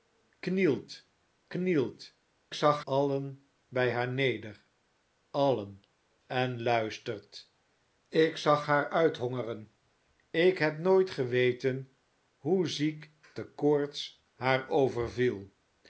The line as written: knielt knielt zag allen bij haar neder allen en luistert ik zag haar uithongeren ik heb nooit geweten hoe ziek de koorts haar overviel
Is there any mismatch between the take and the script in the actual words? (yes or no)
no